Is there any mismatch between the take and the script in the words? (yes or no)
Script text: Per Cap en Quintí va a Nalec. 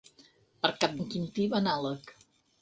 no